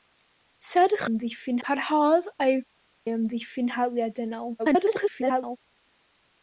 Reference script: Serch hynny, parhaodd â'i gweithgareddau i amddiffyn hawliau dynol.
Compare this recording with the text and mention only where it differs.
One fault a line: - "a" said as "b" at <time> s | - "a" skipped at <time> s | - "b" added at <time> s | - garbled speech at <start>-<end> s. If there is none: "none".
- "hynny" said as "amddiffyn" at 1.1 s
- "gweithgareddau" skipped at 2.5 s
- garbled speech at 4.6-5.6 s